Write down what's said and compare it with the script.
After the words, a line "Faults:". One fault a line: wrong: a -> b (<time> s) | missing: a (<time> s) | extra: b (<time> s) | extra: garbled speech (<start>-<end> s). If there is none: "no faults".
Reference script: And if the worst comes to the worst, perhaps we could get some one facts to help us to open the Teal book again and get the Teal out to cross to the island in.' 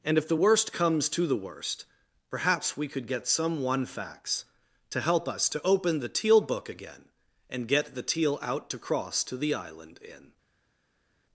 And if the worst comes to the worst, perhaps we could get some one facts to help us to open the Teal book again and get the Teal out to cross to the island in.'
Faults:
no faults